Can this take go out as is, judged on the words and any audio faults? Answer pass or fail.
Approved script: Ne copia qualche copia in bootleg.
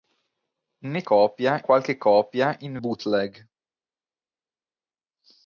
pass